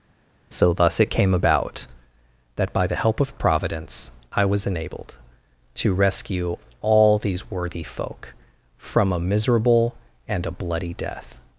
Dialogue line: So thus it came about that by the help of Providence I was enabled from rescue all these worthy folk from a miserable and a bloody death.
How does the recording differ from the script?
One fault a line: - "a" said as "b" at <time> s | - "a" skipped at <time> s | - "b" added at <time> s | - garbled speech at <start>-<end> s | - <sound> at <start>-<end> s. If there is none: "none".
- "from" said as "to" at 5.8 s